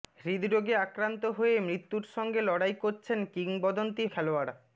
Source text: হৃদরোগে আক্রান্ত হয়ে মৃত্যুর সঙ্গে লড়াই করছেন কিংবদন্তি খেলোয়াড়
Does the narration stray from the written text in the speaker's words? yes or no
no